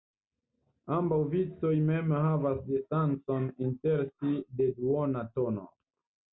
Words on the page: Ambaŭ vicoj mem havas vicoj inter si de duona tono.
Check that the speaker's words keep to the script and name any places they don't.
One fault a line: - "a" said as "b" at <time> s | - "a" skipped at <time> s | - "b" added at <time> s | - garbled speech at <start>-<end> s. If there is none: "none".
- "vicoj" said as "distancon" at 2.7 s